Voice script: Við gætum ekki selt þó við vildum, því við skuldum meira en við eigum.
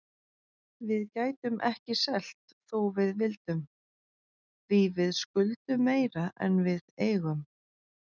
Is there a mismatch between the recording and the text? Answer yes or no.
no